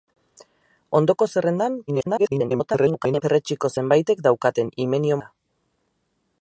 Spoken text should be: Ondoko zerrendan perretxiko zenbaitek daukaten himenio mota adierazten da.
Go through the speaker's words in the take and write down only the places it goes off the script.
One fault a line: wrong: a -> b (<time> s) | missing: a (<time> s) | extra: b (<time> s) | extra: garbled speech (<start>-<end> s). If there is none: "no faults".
extra: garbled speech (1.9-3.2 s)
missing: mota adierazten (5.2 s)